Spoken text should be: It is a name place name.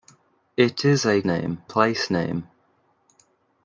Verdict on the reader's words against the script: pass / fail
pass